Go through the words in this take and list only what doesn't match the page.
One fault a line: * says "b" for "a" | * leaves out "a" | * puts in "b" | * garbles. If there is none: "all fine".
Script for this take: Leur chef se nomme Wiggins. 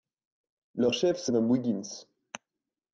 all fine